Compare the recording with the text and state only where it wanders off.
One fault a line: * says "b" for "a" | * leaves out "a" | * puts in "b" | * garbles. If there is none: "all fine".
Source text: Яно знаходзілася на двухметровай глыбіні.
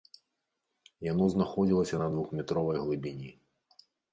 all fine